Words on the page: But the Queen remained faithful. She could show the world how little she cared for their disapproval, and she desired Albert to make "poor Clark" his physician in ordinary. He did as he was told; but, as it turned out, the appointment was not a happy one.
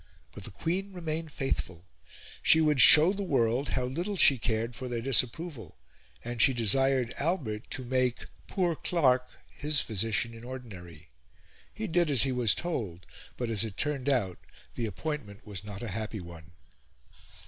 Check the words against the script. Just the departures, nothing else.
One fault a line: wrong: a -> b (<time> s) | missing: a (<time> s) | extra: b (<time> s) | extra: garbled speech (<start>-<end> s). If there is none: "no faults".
wrong: could -> would (2.6 s)